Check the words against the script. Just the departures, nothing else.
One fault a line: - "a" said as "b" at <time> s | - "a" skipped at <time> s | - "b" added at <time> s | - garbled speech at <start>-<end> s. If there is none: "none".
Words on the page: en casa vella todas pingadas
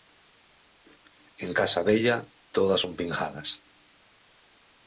- "son" added at 2.8 s